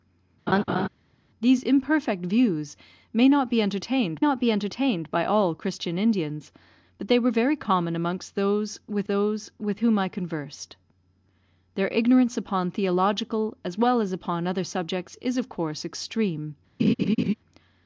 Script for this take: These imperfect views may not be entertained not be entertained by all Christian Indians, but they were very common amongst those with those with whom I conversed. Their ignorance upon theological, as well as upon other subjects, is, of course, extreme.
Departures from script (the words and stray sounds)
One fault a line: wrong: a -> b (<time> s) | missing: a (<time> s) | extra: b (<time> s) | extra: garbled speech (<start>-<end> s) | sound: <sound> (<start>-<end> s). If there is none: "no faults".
sound: laugh (0.5-0.9 s)
sound: laugh (16.8-17.3 s)